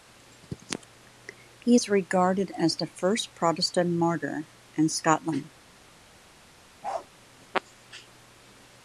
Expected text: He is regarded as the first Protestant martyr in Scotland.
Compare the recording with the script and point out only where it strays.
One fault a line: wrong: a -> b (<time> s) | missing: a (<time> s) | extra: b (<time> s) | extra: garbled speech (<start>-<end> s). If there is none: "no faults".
no faults